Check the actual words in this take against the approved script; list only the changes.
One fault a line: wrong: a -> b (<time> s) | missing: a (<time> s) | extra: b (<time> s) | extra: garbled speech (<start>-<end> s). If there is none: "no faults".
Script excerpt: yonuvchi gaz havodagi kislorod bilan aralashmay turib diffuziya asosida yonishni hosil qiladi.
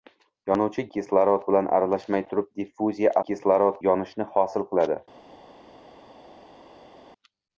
missing: gaz havodagi (0.8 s)
wrong: asosida -> kislorod (3.3 s)